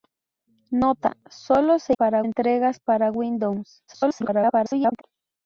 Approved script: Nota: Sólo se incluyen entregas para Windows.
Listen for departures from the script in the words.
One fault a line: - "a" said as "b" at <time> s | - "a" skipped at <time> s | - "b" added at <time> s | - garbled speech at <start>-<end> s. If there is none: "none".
- "incluyen" said as "para" at 1.9 s
- garbled speech at 3.9-5.0 s